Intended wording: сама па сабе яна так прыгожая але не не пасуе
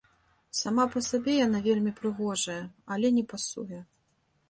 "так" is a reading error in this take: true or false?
true